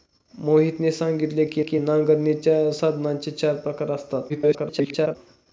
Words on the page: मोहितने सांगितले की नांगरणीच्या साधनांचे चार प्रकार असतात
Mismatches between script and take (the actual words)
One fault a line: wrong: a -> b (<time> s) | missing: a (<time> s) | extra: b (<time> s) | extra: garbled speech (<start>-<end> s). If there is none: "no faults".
extra: की (1.6 s)
extra: garbled speech (4.3-5.2 s)